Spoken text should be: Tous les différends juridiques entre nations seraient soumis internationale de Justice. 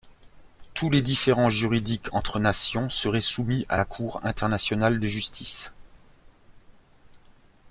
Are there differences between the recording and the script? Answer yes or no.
yes